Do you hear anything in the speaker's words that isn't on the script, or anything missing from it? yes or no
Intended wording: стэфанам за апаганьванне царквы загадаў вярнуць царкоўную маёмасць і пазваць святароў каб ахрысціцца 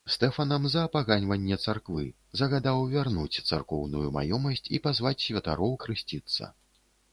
yes